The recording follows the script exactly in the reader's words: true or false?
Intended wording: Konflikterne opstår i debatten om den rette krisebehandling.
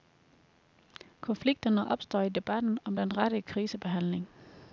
true